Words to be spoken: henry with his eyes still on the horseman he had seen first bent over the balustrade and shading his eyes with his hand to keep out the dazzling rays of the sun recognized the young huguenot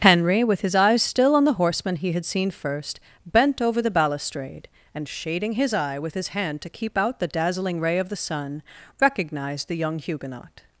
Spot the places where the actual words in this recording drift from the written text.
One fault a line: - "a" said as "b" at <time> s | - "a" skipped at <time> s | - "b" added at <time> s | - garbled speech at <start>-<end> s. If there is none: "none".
- "eyes" said as "eye" at 5.7 s
- "rays" said as "ray" at 7.8 s